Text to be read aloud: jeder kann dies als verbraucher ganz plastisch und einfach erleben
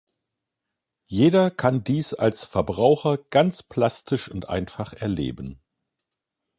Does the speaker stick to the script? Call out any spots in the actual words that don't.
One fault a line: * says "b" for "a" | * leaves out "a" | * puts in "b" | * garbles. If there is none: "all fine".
all fine